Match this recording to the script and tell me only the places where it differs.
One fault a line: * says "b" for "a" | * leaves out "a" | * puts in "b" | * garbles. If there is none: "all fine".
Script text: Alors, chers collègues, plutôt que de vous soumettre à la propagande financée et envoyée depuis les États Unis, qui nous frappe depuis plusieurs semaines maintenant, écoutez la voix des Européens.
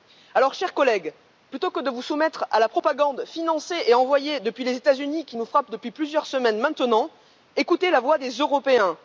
all fine